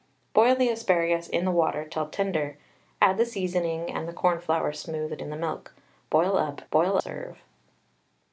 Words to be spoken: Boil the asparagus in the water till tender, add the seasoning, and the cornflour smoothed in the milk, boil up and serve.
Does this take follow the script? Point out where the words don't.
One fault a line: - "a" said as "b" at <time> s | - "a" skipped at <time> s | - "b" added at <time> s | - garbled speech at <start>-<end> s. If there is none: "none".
- "and" said as "boil" at 6.7 s